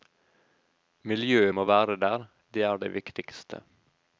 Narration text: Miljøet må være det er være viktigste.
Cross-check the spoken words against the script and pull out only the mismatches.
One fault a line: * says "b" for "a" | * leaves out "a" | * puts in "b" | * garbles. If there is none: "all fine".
* puts in "der"
* says "det" for "være"